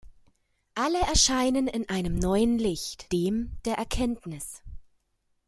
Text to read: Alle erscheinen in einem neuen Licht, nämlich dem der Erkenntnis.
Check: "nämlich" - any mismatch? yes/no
yes